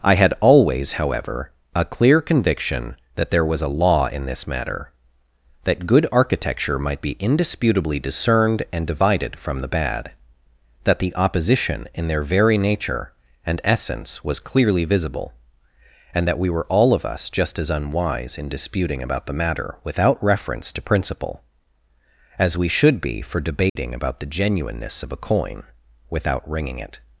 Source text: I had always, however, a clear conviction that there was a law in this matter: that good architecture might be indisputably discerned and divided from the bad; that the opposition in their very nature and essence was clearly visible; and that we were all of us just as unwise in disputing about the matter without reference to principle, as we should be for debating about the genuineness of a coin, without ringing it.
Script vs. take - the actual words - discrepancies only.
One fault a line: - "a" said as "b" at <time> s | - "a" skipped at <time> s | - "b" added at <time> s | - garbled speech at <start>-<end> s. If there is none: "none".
none